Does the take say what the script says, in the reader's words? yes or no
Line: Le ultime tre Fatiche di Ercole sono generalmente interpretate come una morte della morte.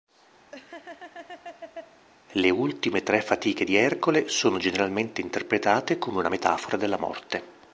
no